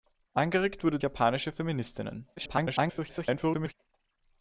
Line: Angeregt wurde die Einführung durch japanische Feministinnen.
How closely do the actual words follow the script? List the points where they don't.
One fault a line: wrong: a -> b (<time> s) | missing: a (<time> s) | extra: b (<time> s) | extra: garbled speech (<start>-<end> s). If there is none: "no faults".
missing: die Einführung durch (1.0 s)
extra: garbled speech (2.4-3.7 s)